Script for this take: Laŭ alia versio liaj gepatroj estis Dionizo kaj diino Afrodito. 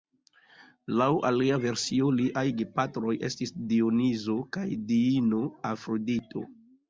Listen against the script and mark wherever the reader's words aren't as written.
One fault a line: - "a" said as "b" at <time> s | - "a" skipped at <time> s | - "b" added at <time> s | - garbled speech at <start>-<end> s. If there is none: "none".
none